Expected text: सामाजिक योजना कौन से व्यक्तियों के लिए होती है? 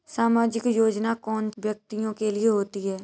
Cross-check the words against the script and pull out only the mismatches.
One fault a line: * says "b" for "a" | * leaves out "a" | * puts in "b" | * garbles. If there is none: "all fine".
* leaves out "से"